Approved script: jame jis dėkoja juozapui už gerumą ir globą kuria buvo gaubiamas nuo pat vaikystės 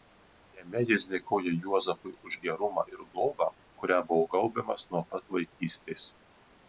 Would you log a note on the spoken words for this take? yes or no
no